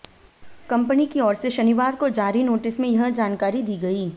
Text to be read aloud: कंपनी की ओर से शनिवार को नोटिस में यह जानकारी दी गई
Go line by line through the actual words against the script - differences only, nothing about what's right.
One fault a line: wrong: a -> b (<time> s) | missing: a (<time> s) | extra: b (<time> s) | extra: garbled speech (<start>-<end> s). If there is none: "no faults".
extra: जारी (2.1 s)